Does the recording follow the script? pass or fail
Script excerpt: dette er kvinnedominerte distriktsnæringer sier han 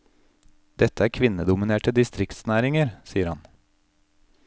pass